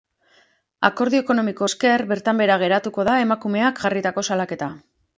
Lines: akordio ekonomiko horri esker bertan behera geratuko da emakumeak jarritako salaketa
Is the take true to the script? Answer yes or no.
no